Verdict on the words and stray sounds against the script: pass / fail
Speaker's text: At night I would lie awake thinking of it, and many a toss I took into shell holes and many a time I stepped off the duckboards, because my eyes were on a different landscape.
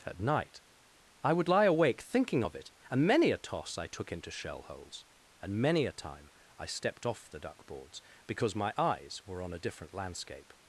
pass